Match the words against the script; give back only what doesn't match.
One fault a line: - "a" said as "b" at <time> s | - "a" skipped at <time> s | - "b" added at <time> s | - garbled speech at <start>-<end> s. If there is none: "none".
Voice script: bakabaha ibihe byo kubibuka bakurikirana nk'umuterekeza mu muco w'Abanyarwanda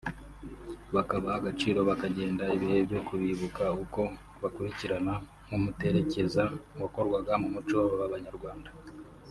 - "agaciro bakagenda" added at 1.4 s
- "uko" added at 3.8 s
- "wakorwaga" added at 6.8 s